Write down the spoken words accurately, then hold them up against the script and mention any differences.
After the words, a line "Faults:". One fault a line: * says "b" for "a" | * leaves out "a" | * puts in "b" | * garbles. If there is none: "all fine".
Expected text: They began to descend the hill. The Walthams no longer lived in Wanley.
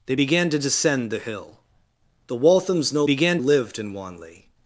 They began to descend the hill. The Walthams no began lived in Wanley.
Faults:
* says "began" for "longer"